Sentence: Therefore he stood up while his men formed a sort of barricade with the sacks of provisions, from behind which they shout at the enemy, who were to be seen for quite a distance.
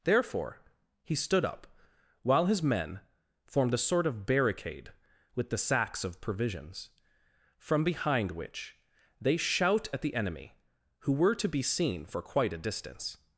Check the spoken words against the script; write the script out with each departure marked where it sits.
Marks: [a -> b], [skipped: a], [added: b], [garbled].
Therefore he stood up while his men formed a sort of barricade with the sacks of provisions, from behind which they shout at the enemy, who were to be seen for quite a distance.